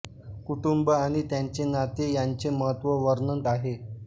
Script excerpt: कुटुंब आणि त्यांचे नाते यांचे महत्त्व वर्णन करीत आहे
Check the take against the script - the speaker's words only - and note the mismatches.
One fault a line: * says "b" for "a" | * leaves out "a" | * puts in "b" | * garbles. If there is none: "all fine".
* leaves out "करीत"